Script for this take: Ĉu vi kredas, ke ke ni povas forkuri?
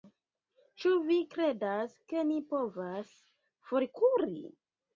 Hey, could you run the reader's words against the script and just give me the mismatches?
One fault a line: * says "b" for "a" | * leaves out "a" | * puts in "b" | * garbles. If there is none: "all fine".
* leaves out "ke"